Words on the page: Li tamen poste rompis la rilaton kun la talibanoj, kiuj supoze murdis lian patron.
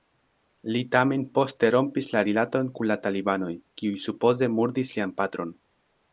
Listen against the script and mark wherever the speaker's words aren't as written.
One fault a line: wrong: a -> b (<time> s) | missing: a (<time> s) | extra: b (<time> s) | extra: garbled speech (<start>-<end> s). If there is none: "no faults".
no faults